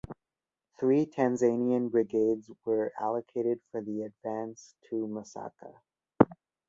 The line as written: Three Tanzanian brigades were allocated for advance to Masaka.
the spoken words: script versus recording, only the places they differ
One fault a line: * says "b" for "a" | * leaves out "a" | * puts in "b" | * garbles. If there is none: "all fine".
* puts in "the"